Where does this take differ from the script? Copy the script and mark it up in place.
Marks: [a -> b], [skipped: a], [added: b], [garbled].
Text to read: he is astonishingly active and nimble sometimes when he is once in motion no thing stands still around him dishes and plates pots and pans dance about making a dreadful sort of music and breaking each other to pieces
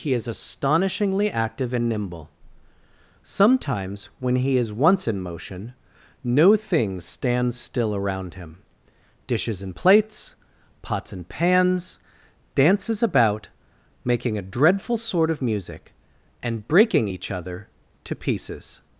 he is astonishingly active and nimble sometimes when he is once in motion no thing stands still around him dishes and plates pots and pans [dance -> dances] about making a dreadful sort of music and breaking each other to pieces